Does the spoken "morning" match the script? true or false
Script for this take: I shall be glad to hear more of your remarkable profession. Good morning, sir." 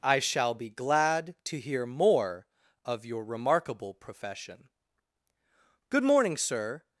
true